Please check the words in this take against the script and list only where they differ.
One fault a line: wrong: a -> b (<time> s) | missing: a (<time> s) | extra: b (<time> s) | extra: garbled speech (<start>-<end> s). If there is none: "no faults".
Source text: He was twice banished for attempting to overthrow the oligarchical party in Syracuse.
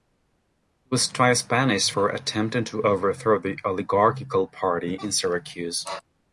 no faults